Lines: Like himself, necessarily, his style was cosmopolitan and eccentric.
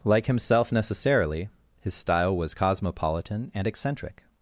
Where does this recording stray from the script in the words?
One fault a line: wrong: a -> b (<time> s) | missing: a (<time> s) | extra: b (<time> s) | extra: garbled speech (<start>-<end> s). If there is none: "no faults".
no faults